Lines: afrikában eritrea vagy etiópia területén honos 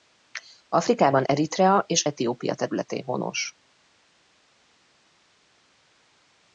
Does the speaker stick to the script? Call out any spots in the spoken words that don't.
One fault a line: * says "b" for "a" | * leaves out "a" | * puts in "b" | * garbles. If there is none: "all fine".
* says "és" for "vagy"